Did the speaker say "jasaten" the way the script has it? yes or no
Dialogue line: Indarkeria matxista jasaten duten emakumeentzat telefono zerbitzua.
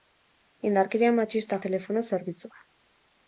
no